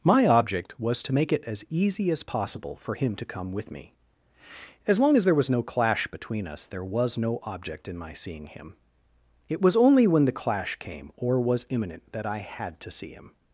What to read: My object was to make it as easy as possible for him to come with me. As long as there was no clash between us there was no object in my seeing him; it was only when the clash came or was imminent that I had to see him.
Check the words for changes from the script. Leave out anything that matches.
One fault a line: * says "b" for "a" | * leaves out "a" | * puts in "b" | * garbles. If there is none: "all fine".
all fine